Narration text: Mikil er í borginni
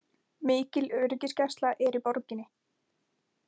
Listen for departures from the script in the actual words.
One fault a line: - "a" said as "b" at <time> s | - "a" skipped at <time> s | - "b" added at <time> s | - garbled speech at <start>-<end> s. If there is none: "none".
- "öryggisgæsla" added at 1.0 s